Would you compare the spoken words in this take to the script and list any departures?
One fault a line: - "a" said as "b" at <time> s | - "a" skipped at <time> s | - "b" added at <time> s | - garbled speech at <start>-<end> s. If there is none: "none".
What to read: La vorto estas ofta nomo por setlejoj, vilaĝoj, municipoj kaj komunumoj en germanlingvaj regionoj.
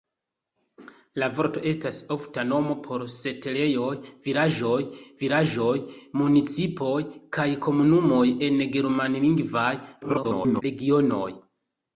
- "vilaĝoj" added at 5.2 s
- garbled speech at 10.0-10.6 s